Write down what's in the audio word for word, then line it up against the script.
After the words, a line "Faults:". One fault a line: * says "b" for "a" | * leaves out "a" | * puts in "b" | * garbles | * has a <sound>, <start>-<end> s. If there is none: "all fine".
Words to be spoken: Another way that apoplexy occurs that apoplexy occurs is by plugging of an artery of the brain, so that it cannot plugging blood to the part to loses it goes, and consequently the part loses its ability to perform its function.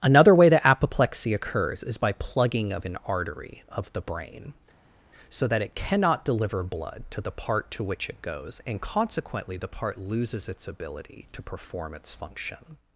Another way that apoplexy occurs is by plugging of an artery of the brain, so that it cannot deliver blood to the part to which it goes, and consequently the part loses its ability to perform its function.
Faults:
* leaves out "that apoplexy occurs"
* says "deliver" for "plugging"
* says "which" for "loses"